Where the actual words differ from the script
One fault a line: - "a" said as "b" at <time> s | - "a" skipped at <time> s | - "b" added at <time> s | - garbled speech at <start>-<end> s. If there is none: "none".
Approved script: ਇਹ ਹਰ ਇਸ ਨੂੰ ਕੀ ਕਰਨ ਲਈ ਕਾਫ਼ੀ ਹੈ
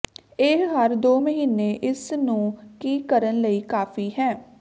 - "ਦੋ ਮਹੀਨੇ" added at 1.0 s